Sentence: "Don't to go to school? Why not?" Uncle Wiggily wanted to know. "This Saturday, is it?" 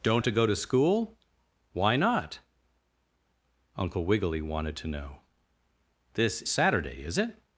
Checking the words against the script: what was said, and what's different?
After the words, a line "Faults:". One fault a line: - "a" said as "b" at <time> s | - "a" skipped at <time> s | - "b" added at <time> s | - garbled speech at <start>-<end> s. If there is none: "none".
"Don't to go to school? Why not?" Uncle Wiggily wanted to know. "This Saturday, is it?"
Faults:
none